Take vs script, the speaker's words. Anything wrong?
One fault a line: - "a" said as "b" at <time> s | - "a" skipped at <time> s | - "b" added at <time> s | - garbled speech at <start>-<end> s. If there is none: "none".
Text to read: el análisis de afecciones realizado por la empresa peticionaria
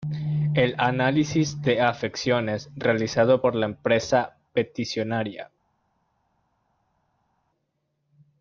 none